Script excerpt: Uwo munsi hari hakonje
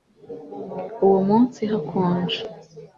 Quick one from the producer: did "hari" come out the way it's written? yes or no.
no